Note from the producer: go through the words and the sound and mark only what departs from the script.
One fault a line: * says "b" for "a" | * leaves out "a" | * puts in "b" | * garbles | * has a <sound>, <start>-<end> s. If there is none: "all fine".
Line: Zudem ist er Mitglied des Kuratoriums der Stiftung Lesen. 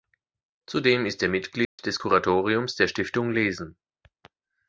* has a dropout, 1.6-1.8 s